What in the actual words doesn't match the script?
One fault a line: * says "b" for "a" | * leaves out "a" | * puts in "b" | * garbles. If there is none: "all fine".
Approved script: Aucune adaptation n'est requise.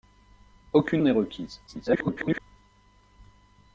* leaves out "adaptation"
* garbles